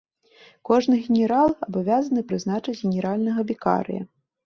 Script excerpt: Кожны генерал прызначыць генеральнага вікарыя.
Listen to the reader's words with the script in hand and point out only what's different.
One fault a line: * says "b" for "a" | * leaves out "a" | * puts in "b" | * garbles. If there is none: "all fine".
* puts in "абавязаны"